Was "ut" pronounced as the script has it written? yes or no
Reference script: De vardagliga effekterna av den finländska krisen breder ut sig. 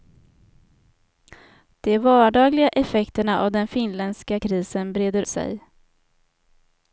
no